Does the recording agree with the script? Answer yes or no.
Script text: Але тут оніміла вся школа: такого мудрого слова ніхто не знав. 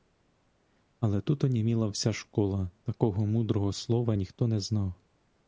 yes